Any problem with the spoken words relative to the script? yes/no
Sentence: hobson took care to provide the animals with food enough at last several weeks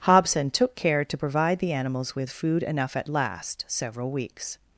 no